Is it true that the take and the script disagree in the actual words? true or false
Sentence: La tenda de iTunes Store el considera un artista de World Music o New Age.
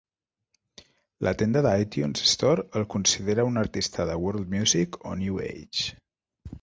false